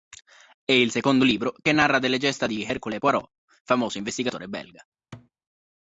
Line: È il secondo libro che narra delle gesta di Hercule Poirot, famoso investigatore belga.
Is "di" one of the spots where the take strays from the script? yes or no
no